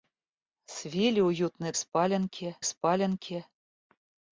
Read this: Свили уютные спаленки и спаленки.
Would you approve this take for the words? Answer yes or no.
yes